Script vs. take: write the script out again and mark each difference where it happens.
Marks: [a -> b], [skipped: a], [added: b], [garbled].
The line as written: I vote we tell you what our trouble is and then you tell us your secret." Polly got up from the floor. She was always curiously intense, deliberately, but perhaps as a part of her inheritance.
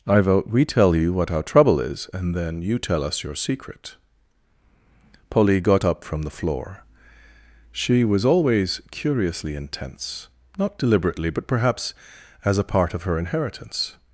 I vote we tell you what our trouble is and then you tell us your secret." Polly got up from the floor. She was always curiously intense, [added: not] deliberately, but perhaps as a part of her inheritance.